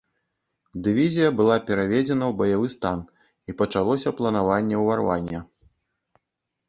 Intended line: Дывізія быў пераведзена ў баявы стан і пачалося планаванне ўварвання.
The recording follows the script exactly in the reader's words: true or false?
false